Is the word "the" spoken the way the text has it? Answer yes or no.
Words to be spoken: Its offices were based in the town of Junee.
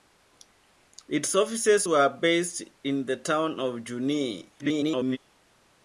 yes